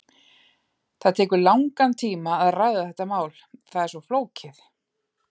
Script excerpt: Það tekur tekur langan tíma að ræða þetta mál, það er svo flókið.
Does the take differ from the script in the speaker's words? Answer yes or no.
yes